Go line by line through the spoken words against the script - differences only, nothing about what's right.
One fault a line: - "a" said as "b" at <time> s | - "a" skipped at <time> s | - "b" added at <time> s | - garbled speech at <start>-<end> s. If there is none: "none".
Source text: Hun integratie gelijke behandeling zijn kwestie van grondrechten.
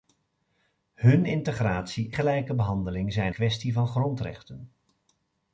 none